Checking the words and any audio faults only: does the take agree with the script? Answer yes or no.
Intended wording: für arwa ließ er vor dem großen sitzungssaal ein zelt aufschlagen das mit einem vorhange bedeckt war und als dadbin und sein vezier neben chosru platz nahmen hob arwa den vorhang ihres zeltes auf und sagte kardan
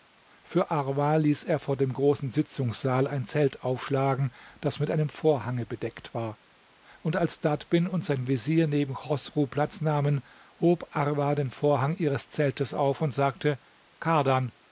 yes